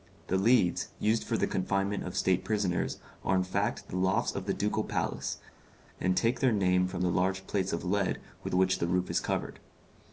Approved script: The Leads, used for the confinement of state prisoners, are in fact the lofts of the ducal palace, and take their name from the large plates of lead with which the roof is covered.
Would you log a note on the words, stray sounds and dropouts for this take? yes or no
no